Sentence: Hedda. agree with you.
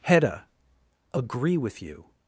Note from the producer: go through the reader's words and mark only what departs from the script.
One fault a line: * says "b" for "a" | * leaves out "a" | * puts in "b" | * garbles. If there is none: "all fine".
all fine